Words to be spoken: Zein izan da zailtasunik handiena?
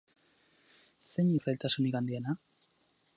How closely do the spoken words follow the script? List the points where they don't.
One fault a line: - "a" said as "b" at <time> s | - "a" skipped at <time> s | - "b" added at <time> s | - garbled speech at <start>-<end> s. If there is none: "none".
- "izan" skipped at 1.3 s